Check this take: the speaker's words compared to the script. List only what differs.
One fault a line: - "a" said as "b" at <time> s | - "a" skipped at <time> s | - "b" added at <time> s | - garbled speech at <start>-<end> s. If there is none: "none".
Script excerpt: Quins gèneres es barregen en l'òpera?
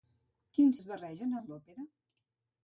- "gèneres" skipped at 0.8 s